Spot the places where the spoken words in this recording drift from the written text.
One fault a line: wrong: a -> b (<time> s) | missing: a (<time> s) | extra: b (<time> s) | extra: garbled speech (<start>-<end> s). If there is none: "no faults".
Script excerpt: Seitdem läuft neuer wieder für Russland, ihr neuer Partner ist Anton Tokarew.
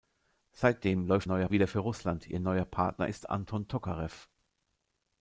no faults